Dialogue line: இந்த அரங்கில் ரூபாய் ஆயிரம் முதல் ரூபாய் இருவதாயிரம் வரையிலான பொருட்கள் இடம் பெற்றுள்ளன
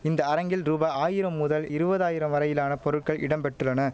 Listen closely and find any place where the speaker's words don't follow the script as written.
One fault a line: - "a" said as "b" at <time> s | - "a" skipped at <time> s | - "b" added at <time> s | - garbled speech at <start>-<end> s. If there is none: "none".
- "ரூபாய்" skipped at 1.7 s